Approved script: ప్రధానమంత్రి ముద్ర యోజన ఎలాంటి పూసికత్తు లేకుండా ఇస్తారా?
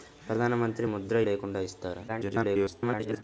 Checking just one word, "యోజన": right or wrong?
wrong